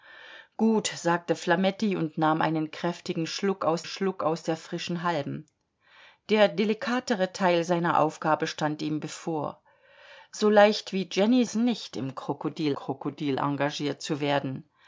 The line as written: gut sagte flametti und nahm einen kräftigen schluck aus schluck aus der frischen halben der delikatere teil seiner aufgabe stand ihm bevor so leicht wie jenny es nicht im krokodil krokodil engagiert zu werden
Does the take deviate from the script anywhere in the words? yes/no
no